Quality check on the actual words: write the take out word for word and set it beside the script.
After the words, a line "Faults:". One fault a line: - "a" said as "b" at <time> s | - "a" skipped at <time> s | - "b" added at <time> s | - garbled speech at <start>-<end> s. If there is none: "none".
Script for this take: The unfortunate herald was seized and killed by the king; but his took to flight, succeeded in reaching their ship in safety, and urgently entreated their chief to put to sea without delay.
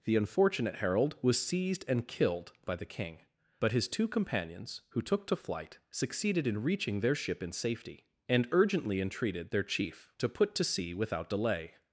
The unfortunate herald was seized and killed by the king; but his two companions, who took to flight, succeeded in reaching their ship in safety, and urgently entreated their chief to put to sea without delay.
Faults:
- "two companions who" added at 3.9 s